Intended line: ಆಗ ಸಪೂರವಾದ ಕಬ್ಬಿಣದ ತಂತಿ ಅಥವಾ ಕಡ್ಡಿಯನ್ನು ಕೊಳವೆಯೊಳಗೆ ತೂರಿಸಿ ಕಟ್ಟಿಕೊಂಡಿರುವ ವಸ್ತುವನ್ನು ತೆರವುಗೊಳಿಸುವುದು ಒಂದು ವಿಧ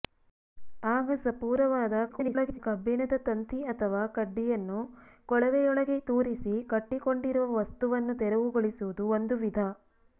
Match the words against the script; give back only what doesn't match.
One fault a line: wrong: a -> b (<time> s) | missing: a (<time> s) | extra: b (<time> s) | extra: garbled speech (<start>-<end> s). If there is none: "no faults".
extra: garbled speech (2.1-2.6 s)